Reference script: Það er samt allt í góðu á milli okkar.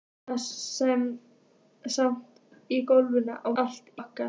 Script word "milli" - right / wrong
wrong